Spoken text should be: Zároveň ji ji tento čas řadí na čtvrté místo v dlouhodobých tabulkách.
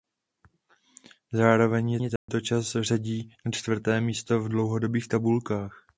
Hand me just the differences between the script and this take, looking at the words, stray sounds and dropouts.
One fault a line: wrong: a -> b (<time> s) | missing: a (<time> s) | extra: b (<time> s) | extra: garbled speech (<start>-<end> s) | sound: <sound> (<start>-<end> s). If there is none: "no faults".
sound: dropout (2.2-2.3 s)